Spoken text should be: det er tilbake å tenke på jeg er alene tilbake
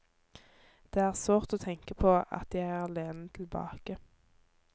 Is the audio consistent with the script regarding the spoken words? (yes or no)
no